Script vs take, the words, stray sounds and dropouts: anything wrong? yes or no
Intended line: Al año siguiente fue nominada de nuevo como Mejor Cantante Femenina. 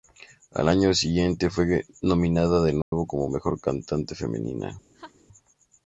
yes